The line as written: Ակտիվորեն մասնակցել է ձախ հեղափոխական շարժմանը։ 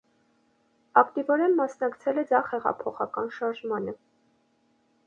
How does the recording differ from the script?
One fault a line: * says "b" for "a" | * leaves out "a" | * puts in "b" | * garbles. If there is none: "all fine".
all fine